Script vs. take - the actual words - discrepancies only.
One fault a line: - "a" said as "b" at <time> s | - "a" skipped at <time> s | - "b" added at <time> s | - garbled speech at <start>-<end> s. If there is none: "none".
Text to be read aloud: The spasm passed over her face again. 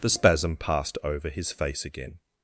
- "her" said as "his" at 1.3 s